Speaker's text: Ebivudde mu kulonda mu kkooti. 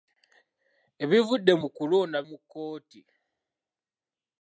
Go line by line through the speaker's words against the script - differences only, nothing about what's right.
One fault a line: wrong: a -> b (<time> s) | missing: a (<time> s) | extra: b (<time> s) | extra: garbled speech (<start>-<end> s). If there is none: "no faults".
no faults